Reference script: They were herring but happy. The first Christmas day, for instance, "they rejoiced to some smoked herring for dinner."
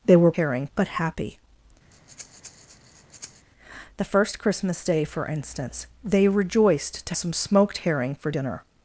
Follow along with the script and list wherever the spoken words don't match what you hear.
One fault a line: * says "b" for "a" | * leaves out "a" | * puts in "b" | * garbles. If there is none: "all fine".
all fine